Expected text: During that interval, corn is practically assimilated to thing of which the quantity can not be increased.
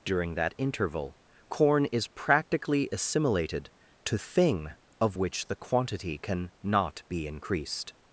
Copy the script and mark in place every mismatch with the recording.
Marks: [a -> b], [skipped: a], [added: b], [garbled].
During that interval, corn is practically assimilated to thing of which the quantity can not be increased.